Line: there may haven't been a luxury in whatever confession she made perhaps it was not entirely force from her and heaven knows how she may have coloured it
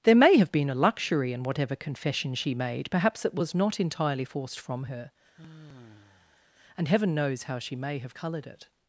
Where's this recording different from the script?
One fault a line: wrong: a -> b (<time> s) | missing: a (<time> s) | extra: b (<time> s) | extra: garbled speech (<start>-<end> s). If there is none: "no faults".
wrong: haven't -> have (0.4 s)
wrong: force -> forced (4.2 s)